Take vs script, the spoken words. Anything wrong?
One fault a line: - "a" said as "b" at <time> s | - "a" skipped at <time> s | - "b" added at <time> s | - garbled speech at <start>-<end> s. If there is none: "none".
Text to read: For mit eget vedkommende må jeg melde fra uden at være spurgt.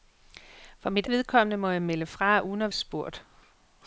- "eget" skipped at 1.1 s
- "være" skipped at 2.7 s